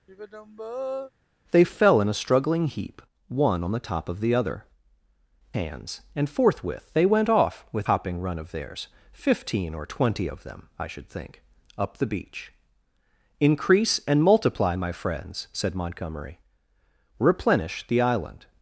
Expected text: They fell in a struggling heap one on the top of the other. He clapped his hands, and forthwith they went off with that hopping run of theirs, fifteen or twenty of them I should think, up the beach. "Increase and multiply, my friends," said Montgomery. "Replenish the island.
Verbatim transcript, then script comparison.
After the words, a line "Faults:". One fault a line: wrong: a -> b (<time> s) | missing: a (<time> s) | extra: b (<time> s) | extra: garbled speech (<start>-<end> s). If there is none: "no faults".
They fell in a struggling heap one on the top of the other. Hands, and forthwith they went off with hopping run of theirs, fifteen or twenty of them I should think, up the beach. "Increase and multiply, my friends," said Montgomery. "Replenish the island.
Faults:
missing: He clapped his (4.6 s)
missing: that (7.9 s)